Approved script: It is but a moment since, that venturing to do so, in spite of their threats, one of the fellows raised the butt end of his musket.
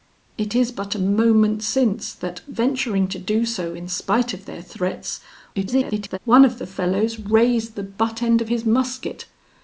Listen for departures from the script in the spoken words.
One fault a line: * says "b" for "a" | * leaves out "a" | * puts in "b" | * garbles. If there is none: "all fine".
* garbles